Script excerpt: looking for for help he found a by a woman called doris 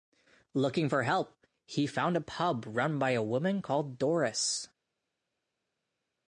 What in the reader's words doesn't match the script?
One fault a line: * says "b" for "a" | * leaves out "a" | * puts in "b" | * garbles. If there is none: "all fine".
* leaves out "for"
* puts in "pub run"